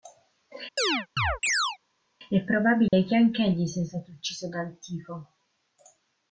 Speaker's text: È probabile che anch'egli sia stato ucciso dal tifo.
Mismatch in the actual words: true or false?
false